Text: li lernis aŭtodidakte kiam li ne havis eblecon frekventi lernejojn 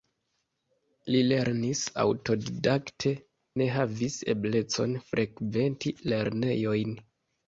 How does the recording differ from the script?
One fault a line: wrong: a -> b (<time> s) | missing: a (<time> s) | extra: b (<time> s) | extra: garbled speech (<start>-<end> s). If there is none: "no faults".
missing: kiam li (3.1 s)